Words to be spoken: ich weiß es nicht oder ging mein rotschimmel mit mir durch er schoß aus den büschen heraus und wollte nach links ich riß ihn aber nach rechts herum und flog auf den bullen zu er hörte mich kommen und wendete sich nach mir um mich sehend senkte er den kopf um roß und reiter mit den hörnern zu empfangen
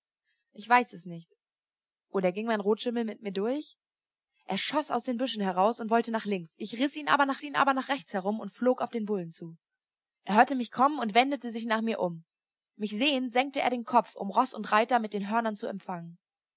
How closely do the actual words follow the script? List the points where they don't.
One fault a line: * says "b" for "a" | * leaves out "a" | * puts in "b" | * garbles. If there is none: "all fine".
* puts in "ihn aber nach"